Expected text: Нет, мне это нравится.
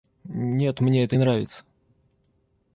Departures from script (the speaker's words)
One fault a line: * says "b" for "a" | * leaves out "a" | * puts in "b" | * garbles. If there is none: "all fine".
all fine